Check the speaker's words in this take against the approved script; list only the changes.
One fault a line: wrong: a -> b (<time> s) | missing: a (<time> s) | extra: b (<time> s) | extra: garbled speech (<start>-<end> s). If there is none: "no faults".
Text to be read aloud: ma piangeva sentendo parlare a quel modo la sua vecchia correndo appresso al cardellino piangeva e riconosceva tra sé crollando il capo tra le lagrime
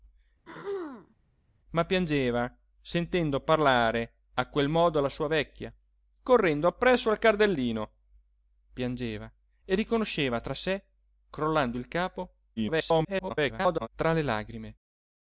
extra: garbled speech (12.6-13.9 s)